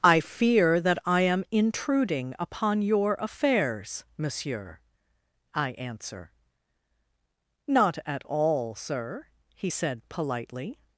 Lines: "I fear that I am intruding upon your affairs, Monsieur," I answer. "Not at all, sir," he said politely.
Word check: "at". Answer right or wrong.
right